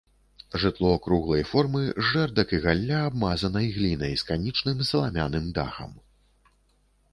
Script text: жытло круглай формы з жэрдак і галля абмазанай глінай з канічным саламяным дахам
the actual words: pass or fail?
pass